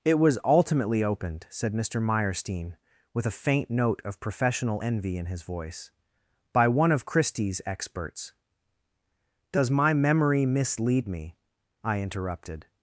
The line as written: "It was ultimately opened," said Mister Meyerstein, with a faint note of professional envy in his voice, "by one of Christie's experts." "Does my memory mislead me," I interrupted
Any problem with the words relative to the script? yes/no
no